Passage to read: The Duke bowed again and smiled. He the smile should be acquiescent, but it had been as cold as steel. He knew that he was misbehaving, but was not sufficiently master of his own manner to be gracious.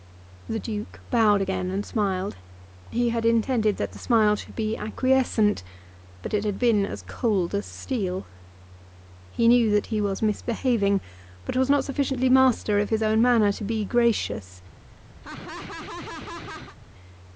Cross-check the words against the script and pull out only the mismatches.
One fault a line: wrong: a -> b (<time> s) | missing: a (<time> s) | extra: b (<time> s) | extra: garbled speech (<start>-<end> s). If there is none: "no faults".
extra: had intended that (3.1 s)